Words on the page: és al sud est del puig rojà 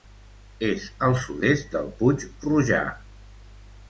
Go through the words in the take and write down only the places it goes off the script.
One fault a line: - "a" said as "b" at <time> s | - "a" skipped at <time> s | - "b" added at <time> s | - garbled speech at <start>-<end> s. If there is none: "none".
none